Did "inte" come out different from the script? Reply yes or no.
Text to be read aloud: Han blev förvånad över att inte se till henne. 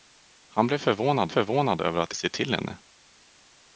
yes